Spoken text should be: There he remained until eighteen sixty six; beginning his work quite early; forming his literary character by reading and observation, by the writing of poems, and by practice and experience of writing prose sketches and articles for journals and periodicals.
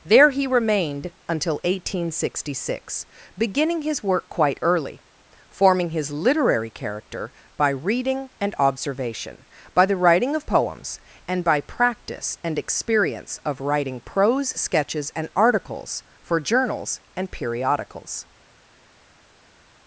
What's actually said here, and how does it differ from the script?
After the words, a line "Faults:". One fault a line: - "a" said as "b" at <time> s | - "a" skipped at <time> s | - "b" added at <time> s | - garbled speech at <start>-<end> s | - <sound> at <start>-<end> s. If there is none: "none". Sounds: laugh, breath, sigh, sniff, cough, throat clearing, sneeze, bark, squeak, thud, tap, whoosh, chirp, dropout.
There he remained until eighteen sixty six; beginning his work quite early; forming his literary character by reading and observation, by the writing of poems, and by practice and experience of writing prose sketches and articles for journals and periodicals.
Faults:
none